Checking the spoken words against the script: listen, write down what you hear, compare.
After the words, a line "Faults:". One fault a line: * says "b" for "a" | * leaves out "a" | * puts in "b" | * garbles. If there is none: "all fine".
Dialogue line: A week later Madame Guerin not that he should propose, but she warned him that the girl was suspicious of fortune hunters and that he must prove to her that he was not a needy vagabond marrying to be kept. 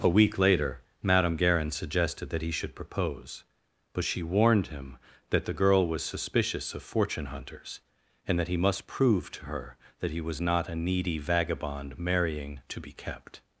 A week later Madame Guerin suggested that he should propose, but she warned him that the girl was suspicious of fortune hunters and that he must prove to her that he was not a needy vagabond marrying to be kept.
Faults:
* says "suggested" for "not"